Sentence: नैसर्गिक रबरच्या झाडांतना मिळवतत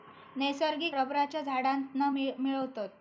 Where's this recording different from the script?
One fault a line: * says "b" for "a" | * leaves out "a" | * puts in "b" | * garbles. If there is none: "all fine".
all fine